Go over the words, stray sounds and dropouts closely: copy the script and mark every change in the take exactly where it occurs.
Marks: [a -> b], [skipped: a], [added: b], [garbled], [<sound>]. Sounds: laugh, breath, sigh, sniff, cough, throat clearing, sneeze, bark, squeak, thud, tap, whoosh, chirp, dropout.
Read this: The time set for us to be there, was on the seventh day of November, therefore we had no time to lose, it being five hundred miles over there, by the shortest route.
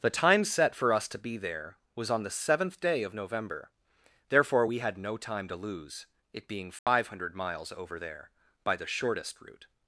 The time set for us to be there, was on the seventh day of November, therefore we had no time to lose, it being five [dropout] hundred miles over there, by the shortest route.